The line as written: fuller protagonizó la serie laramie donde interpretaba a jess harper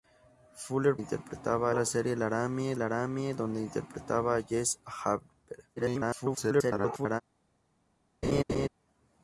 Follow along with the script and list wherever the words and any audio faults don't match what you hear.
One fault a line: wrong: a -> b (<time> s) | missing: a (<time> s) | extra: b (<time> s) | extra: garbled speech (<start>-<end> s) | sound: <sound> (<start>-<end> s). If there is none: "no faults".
wrong: protagonizó -> interpretaba (1.0 s)
extra: laramie (2.7 s)
extra: garbled speech (5.8-7.2 s)
sound: laugh (8.2-8.7 s)